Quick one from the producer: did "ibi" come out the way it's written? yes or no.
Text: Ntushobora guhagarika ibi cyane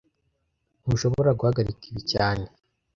yes